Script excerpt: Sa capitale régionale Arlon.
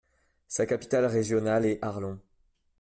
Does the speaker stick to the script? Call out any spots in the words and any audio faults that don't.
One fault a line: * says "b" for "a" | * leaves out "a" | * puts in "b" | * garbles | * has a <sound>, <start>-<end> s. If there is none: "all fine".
* puts in "est"